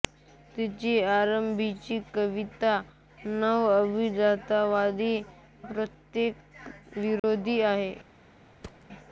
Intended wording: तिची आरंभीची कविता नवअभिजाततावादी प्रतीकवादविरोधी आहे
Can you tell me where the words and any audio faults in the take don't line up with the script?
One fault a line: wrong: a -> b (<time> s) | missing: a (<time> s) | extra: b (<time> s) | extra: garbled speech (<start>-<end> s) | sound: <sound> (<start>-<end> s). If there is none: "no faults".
sound: dropout (7.2-7.2 s)
sound: thud (8.6-8.9 s)